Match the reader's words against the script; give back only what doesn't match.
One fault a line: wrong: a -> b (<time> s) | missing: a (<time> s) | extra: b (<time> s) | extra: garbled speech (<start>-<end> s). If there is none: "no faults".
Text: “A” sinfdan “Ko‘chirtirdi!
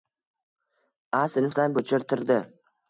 no faults